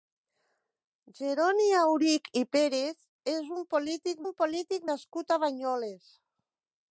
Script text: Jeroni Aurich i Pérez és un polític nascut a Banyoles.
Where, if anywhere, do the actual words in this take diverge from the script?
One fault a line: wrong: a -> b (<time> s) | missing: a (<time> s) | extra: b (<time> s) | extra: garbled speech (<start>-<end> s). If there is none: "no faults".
extra: un polític (4.3 s)